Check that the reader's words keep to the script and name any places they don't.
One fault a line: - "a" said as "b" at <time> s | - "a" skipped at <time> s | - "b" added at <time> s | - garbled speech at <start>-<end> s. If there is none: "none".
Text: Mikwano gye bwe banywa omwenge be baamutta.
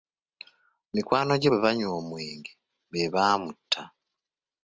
none